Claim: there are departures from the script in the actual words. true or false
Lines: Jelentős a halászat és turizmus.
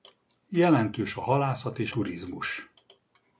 false